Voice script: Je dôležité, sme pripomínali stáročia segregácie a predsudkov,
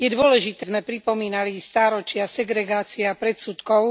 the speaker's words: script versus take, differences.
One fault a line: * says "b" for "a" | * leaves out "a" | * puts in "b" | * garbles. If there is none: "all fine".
all fine